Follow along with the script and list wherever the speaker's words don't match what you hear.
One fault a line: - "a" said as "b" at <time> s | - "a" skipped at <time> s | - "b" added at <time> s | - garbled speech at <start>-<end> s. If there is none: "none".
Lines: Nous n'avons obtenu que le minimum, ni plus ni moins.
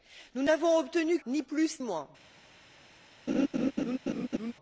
- "que le minimum" skipped at 1.2 s
- "ni" skipped at 1.8 s